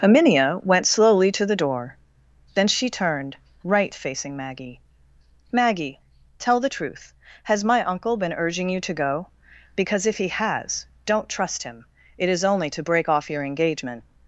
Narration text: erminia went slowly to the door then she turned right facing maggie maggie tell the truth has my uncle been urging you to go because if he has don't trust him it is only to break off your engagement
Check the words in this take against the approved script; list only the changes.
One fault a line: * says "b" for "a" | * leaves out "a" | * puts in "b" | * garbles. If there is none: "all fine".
all fine